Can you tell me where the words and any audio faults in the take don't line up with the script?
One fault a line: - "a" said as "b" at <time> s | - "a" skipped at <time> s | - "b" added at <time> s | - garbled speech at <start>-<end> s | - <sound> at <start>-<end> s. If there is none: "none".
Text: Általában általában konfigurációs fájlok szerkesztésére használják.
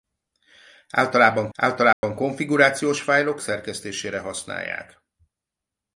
- dropout at 1.9-2.0 s